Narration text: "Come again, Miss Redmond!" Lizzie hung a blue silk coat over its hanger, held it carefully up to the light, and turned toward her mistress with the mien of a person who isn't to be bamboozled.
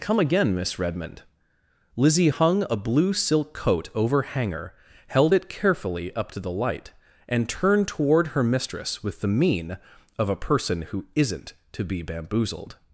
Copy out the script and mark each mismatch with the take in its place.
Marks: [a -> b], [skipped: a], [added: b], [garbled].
"Come again, Miss Redmond!" Lizzie hung a blue silk coat over [skipped: its] hanger, held it carefully up to the light, and turned toward her mistress with the mien of a person who isn't to be bamboozled.